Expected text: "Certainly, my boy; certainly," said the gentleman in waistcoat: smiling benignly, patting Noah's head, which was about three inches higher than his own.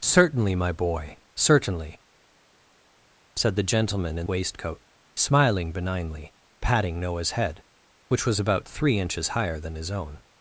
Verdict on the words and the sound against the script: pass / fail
pass